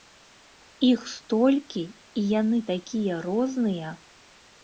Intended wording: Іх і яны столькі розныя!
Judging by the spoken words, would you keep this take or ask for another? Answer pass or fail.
fail